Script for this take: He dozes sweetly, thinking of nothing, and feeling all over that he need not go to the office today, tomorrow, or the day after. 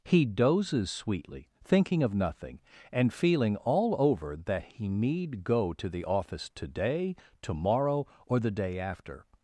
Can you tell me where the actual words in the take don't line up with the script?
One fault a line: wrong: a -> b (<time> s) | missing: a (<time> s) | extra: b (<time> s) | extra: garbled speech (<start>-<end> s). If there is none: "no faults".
missing: not (5.4 s)